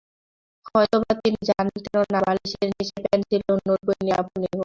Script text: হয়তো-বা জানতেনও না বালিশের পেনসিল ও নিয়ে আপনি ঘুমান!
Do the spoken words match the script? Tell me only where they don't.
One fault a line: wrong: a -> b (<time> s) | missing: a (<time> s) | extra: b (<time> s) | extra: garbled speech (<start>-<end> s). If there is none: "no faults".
extra: তিনি (1.2 s)
extra: নিচে (2.7 s)
extra: নোটবই (3.6 s)